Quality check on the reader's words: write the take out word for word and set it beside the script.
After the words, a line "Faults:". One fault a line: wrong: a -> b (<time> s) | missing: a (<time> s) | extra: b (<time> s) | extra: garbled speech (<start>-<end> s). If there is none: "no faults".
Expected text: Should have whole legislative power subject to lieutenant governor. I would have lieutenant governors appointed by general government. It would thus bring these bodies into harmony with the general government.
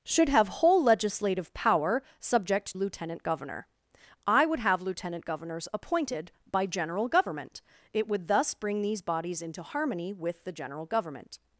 Should have whole legislative power subject lieutenant governor. I would have lieutenant governors appointed by general government. It would thus bring these bodies into harmony with the general government.
Faults:
missing: to (2.8 s)